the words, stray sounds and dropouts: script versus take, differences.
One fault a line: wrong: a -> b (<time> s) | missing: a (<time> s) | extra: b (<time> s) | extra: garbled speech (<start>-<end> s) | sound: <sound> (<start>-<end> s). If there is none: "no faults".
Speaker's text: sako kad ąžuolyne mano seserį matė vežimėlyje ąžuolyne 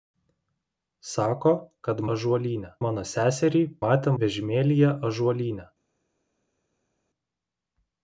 no faults